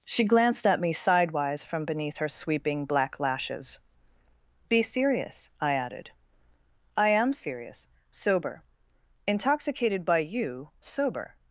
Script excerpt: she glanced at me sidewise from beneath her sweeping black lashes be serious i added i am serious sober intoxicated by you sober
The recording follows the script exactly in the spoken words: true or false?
true